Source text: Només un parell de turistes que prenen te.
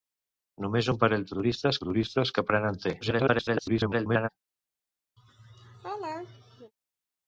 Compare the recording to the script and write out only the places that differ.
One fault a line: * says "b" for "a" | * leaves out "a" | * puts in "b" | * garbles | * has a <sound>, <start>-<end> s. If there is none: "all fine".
* puts in "turistes"
* garbles
* has a laugh, 5.2-6.7 s